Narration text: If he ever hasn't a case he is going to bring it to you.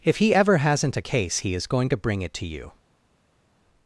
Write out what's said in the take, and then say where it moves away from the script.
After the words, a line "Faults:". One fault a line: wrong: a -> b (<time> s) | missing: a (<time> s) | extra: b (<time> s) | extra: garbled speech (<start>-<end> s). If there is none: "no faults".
If he ever hasn't a case he is going to bring it to you.
Faults:
no faults